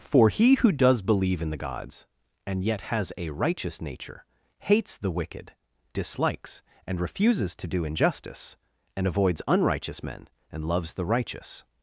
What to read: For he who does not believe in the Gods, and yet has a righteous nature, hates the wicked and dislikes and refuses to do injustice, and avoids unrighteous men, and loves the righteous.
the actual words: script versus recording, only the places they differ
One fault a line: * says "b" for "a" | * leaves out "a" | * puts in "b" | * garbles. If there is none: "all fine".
* leaves out "not"
* leaves out "and"